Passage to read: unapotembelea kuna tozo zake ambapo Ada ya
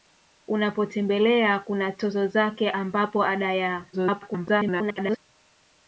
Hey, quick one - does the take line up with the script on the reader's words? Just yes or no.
no